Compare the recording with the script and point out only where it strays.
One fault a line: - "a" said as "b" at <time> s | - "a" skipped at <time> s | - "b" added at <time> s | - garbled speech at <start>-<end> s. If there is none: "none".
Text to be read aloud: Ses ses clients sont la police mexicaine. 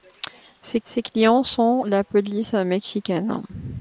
none